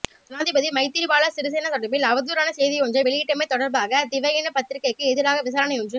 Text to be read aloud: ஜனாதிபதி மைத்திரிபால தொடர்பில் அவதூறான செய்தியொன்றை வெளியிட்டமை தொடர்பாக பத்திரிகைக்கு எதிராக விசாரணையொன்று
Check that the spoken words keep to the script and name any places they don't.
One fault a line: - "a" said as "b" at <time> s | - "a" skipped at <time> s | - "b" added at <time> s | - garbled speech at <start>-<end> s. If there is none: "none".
- "சிறிசேன" added at 1.4 s
- "திவயின" added at 4.1 s